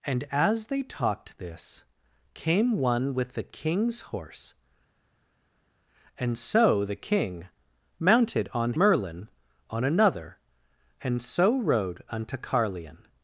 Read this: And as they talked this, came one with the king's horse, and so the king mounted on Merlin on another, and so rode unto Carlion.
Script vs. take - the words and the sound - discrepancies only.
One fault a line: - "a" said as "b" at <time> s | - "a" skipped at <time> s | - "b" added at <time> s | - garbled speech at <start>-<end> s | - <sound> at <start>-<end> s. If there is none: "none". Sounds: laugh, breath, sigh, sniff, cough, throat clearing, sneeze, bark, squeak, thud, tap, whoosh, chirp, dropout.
none